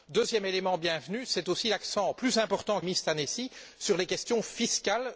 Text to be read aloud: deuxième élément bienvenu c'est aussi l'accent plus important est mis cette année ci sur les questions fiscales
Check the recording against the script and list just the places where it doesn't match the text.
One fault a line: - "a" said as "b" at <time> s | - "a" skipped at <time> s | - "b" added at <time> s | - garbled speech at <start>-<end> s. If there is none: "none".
none